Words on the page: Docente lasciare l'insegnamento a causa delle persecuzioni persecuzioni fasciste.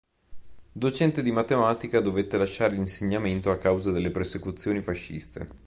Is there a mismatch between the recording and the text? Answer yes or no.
yes